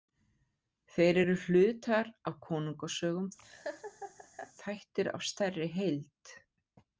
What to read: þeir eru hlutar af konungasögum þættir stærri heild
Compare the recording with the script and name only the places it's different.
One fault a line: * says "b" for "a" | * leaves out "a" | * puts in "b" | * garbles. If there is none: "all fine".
* puts in "af"